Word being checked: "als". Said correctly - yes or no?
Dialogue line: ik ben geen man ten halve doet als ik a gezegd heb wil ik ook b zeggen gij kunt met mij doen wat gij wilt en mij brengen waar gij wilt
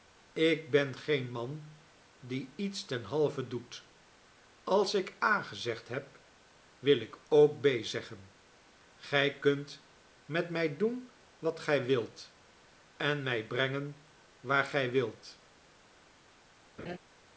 yes